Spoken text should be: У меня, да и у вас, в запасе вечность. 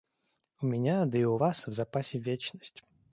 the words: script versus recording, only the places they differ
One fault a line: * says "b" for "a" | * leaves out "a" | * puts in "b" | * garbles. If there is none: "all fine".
all fine